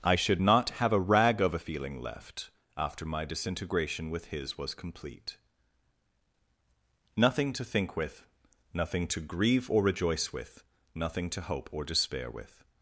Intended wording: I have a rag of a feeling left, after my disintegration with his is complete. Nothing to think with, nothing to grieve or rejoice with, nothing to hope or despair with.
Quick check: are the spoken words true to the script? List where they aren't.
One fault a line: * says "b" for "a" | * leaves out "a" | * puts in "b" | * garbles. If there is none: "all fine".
* puts in "should not"
* says "was" for "is"